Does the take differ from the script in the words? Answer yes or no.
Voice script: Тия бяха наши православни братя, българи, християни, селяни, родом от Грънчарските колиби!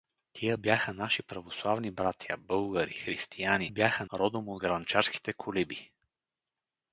yes